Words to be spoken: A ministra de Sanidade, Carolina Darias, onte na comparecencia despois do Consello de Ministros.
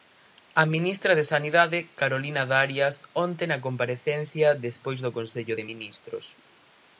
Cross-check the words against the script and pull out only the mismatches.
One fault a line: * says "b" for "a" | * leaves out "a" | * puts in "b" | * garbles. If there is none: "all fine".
all fine